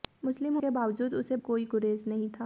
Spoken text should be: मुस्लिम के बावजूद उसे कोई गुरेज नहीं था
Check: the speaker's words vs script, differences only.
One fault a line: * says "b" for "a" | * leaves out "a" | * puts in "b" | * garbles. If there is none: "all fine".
all fine